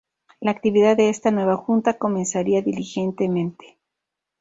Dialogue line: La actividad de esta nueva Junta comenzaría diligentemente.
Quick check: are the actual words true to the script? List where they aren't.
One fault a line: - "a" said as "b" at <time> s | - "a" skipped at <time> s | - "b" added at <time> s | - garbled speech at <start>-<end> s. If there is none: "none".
none